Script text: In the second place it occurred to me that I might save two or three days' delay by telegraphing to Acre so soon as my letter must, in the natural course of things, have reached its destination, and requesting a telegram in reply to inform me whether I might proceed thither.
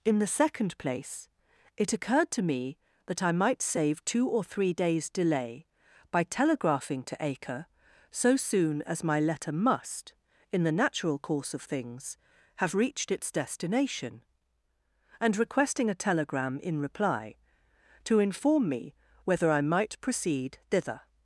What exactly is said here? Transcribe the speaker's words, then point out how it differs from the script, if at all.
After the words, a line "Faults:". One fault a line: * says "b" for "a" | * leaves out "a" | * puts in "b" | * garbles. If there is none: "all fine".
In the second place it occurred to me that I might save two or three days' delay by telegraphing to Acre so soon as my letter must, in the natural course of things, have reached its destination, and requesting a telegram in reply to inform me whether I might proceed thither.
Faults:
all fine